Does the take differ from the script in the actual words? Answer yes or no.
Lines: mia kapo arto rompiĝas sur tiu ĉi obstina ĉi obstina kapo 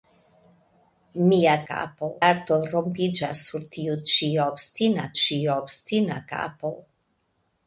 no